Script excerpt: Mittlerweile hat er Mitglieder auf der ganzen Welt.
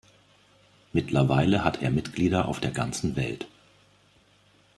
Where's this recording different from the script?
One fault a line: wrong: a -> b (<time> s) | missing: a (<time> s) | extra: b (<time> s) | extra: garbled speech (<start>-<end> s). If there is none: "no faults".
no faults